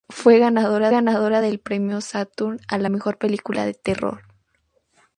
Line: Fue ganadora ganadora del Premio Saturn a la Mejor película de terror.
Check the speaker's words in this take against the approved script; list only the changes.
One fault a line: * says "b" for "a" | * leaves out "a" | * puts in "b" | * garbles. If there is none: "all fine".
all fine